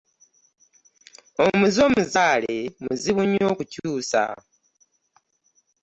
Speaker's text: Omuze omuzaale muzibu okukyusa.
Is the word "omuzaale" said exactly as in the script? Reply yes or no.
yes